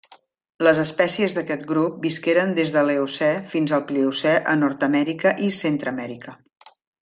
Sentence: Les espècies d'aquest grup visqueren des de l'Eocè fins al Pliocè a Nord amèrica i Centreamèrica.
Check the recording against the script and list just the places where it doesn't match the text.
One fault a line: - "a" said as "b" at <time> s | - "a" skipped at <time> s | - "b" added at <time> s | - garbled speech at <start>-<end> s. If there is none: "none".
none